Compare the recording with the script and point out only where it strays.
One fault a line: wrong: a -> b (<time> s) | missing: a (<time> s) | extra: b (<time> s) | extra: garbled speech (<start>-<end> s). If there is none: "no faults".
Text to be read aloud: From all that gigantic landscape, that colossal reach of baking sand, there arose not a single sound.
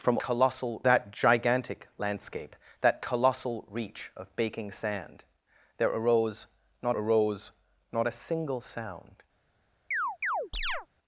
wrong: all -> colossal (0.2 s)
extra: arose not (6.9 s)